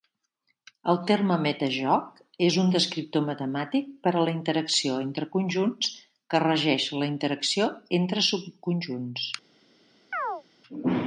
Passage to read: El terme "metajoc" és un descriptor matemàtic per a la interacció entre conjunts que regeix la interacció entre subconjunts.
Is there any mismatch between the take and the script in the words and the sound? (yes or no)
yes